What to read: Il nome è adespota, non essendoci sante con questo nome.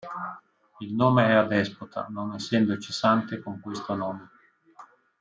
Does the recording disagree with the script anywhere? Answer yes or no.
no